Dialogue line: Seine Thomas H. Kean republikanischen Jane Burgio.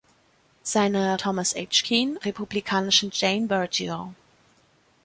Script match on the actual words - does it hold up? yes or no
yes